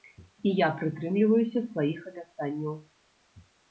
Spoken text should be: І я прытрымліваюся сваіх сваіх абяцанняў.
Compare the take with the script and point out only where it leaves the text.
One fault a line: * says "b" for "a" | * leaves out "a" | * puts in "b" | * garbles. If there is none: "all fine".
* leaves out "сваіх"